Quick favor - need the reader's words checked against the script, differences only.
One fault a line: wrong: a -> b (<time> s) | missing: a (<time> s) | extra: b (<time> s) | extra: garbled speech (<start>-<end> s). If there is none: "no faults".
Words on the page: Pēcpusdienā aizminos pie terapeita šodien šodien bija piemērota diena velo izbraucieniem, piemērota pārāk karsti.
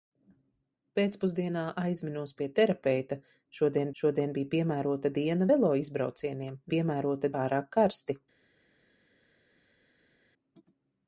no faults